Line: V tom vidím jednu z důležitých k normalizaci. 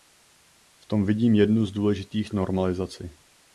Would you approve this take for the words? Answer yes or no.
yes